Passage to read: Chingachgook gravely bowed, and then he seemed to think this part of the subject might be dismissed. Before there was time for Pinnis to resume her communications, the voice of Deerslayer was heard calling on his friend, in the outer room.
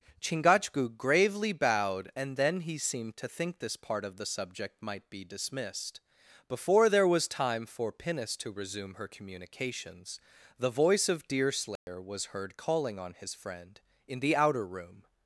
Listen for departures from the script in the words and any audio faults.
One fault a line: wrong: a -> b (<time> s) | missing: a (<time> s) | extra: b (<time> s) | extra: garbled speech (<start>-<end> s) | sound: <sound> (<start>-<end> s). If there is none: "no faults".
sound: dropout (11.8-11.9 s)